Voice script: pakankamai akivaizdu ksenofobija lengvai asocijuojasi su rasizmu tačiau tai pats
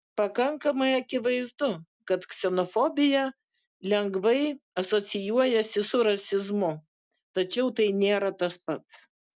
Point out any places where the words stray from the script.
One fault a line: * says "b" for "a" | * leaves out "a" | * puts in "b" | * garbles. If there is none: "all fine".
* puts in "kad"
* puts in "nėra tas"